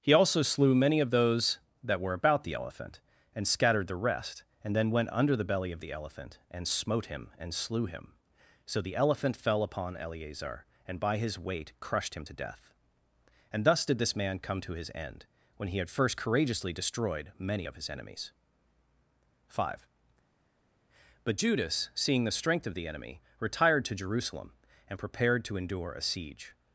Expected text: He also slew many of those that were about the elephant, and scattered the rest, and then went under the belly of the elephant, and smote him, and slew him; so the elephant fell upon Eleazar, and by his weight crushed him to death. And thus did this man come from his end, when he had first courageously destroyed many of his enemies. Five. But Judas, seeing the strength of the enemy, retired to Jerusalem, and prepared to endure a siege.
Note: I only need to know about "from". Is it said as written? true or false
false